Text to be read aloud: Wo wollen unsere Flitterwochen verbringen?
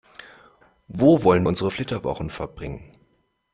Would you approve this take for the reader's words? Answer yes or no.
yes